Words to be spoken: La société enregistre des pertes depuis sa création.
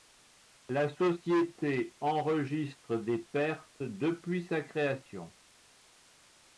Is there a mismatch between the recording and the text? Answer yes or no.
no